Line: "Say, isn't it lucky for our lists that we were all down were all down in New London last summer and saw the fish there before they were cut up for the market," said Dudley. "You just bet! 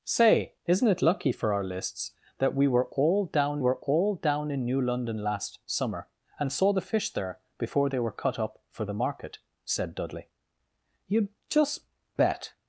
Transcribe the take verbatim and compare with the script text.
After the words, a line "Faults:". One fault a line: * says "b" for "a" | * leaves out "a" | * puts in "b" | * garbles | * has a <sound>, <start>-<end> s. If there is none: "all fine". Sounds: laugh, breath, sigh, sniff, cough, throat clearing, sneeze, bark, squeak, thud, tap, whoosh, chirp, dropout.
"Say, isn't it lucky for our lists that we were all down were all down in New London last summer and saw the fish there before they were cut up for the market," said Dudley. "You just bet!
Faults:
all fine